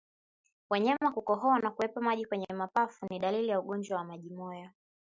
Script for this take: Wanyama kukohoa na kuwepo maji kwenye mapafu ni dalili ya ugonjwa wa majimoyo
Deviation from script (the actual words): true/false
false